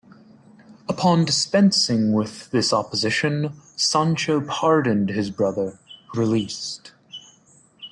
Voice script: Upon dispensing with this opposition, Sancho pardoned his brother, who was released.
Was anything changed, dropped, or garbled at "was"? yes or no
yes